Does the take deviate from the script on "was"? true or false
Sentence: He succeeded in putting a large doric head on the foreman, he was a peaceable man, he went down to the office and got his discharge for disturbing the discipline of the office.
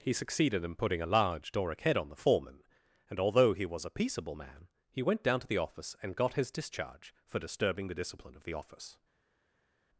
false